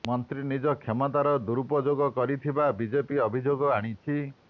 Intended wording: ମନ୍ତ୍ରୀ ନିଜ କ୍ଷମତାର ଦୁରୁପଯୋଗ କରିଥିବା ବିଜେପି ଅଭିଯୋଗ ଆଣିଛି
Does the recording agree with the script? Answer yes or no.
yes